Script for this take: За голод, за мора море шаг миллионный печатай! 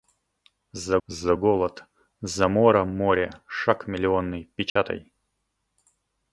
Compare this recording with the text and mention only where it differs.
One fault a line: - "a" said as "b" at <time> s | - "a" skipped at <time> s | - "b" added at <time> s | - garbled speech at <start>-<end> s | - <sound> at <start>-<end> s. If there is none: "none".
- "за" added at 1.1 s
- dropout at 4.7-4.8 s